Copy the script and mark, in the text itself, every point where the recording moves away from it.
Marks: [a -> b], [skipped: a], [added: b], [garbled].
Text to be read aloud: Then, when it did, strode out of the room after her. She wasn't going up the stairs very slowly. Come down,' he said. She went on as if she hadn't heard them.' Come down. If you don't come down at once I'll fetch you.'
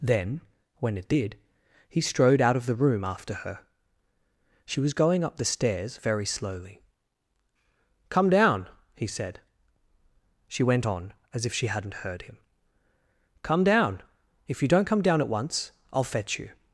Then, when it did, [added: he] strode out of the room after her. She [wasn't -> was] going up the stairs very slowly. Come down,' he said. She went on as if she hadn't heard [them.' -> him] Come down. If you don't come down at once I'll fetch you.'